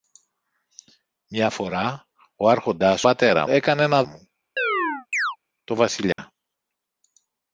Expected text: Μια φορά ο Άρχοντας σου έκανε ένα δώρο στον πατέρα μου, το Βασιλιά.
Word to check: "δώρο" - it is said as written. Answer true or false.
false